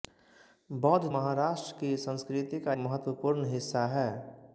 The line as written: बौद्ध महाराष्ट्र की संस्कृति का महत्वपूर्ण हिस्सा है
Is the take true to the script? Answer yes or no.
yes